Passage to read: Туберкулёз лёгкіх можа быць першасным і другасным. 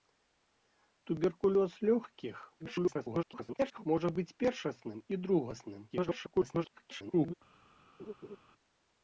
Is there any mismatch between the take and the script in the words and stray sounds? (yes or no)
yes